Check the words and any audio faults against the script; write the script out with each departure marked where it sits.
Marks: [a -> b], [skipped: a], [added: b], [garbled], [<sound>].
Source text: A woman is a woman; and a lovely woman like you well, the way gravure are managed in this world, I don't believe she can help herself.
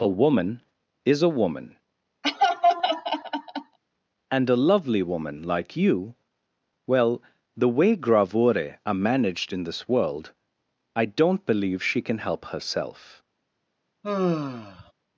A woman is a woman; [laugh] and a lovely woman like you well, the way gravure are managed in this world, I don't believe she can help herself. [sigh]